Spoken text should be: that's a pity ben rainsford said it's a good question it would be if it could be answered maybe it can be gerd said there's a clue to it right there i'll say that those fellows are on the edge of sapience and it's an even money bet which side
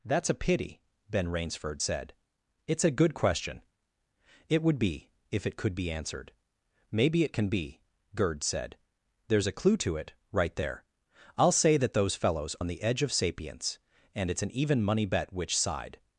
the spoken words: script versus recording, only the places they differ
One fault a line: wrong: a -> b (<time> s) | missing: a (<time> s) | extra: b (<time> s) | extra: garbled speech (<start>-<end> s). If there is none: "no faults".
missing: are (12.5 s)